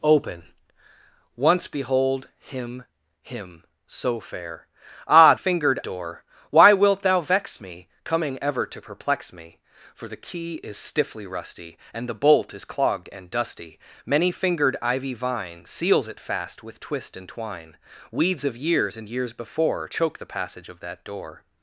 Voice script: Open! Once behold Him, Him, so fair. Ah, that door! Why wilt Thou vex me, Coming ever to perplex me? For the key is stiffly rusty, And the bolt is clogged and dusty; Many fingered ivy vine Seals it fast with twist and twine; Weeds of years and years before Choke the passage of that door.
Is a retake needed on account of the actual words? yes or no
yes